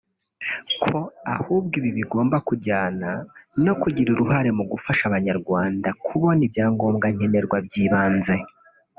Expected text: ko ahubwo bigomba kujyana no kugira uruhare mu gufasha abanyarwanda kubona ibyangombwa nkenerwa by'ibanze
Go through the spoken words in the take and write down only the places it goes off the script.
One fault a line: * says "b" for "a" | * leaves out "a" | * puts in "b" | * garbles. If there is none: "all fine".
* puts in "ibi"